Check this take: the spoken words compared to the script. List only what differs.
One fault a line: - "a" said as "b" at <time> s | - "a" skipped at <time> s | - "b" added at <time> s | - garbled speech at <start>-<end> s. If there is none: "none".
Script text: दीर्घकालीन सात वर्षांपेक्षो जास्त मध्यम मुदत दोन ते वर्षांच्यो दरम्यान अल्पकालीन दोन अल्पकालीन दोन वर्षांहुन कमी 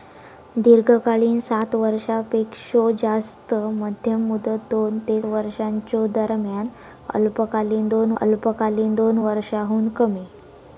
none